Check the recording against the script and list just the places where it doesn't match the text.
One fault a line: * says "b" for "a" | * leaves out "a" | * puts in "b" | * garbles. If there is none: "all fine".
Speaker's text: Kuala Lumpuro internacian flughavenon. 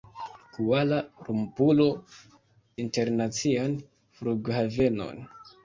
all fine